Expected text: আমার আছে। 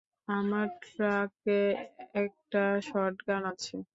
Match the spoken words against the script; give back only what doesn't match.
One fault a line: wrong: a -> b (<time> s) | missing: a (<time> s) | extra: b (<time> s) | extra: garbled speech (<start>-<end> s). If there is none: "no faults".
extra: ট্রাকে একটা শটগান (0.8 s)